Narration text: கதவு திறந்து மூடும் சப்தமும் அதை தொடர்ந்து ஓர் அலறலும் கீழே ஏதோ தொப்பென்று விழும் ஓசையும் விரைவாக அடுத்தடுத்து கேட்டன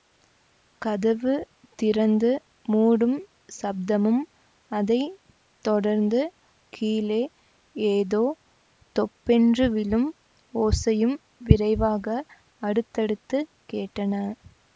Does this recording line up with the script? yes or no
no